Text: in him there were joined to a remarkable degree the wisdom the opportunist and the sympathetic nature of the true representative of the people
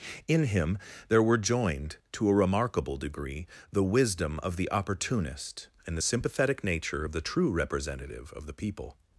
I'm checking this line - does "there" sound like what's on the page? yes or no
yes